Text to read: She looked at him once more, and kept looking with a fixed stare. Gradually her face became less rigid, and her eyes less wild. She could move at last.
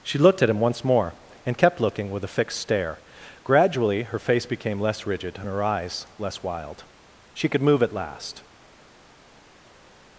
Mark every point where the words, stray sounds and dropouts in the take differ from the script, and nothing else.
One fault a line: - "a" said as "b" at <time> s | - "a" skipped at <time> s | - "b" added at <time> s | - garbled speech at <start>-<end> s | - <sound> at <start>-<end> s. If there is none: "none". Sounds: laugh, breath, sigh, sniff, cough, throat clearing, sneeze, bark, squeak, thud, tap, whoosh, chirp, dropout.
none